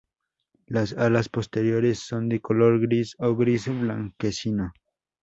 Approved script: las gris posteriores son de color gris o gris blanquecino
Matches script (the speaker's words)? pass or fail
fail